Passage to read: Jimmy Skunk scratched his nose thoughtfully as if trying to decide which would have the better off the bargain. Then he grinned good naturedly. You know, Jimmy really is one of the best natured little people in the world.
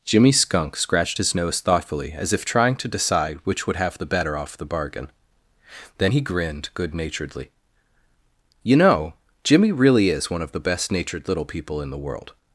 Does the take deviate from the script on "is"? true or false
false